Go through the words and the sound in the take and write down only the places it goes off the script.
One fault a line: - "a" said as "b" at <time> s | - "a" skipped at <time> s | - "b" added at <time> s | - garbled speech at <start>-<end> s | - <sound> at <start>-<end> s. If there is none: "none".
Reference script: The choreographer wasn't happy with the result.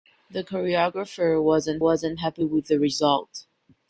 - "wasn't" added at 1.8 s